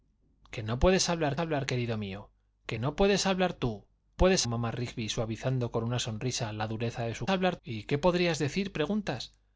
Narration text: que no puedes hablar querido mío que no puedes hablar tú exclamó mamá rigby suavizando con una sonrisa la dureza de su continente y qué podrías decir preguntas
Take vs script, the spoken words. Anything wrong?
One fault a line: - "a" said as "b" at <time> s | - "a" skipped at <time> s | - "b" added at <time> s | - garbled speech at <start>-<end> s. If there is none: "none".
- "hablar" added at 1.4 s
- "exclamó" said as "puedes" at 4.2 s
- "continente" said as "hablar" at 7.3 s